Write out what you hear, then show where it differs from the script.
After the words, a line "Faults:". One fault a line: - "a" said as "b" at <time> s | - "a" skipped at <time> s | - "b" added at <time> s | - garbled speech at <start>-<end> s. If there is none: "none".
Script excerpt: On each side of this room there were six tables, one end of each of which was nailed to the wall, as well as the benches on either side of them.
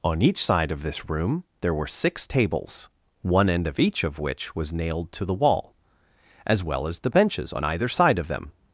On each side of this room there were six tables, one end of each of which was nailed to the wall, as well as the benches on either side of them.
Faults:
none